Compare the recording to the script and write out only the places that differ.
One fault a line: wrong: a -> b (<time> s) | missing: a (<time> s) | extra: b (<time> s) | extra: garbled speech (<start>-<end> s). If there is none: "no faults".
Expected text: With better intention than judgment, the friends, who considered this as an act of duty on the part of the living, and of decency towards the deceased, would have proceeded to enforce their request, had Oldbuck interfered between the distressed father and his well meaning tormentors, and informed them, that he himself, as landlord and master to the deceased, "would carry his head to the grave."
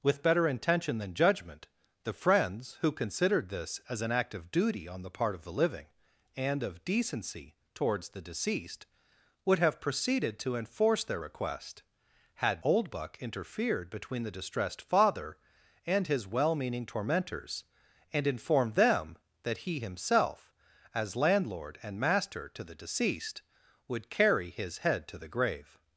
no faults